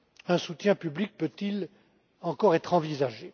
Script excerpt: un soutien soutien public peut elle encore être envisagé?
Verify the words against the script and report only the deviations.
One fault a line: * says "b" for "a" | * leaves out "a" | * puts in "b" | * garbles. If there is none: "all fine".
* leaves out "soutien"
* says "il" for "elle"